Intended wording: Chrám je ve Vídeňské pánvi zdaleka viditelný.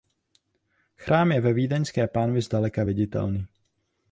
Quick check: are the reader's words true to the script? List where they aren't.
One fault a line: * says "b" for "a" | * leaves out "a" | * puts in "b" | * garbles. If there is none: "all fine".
all fine